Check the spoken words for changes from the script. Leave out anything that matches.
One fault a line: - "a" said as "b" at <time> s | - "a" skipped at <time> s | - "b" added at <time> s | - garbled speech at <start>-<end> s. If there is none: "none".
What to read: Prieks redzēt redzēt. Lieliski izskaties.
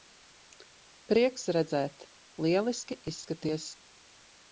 - "redzēt" skipped at 2.0 s